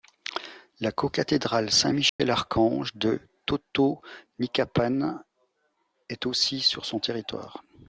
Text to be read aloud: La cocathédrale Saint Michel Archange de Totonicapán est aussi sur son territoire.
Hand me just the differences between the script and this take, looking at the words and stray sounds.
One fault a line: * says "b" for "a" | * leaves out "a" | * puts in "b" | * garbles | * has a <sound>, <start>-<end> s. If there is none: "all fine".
* has a dropout, 2.1-2.2 s